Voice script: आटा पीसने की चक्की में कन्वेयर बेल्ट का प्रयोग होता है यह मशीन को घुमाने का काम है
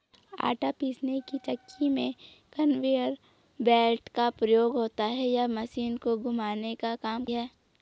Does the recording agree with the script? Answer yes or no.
yes